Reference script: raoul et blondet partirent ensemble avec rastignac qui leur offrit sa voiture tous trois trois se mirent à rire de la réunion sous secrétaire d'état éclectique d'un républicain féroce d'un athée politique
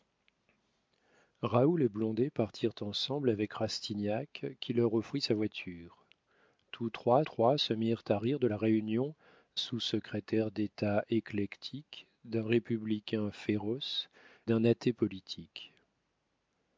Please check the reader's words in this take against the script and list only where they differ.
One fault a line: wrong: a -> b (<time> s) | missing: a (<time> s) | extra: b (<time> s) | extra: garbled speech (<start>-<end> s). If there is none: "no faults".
no faults